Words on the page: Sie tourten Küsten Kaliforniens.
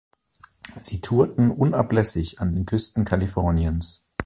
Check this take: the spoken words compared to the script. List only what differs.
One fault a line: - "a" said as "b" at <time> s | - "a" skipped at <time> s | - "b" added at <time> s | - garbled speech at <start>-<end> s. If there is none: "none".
- "unablässig an den" added at 1.5 s